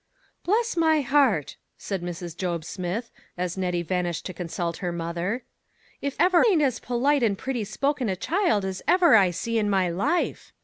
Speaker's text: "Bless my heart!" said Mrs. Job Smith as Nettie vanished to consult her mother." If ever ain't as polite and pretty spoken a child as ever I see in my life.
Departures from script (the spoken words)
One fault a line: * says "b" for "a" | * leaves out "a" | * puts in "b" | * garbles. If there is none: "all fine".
all fine